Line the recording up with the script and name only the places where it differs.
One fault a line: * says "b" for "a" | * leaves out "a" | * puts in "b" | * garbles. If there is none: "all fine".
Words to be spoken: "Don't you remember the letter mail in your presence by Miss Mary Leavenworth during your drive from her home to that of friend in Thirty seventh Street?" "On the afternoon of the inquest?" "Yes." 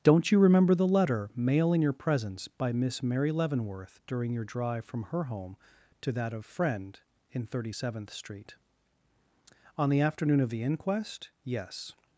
all fine